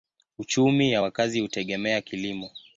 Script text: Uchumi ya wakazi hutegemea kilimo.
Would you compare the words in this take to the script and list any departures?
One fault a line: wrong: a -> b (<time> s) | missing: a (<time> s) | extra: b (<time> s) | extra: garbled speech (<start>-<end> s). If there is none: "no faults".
no faults